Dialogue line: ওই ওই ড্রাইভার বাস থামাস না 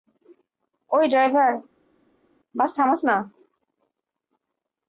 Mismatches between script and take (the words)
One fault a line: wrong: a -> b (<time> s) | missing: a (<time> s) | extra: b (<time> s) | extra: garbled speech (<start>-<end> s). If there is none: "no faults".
missing: ওই (1.1 s)